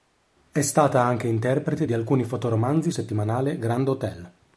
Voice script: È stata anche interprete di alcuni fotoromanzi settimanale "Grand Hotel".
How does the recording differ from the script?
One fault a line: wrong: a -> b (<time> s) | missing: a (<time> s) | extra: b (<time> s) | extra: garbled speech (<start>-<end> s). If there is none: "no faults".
no faults